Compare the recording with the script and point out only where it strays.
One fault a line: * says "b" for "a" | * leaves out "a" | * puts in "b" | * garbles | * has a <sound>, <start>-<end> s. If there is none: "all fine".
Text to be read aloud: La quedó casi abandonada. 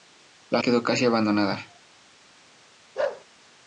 * has a bark, 3.0-3.3 s